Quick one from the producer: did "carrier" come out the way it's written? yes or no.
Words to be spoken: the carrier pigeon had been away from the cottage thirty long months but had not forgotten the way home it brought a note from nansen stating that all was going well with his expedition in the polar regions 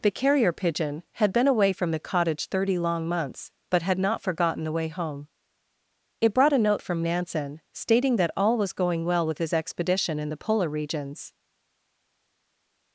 yes